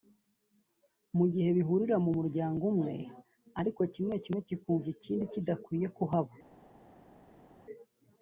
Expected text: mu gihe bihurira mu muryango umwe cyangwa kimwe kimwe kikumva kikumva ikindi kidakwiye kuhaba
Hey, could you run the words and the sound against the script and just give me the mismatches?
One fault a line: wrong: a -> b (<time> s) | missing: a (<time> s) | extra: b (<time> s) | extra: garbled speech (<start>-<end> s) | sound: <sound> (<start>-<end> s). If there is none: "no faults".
wrong: cyangwa -> ariko (3.6 s)
missing: kikumva (4.9 s)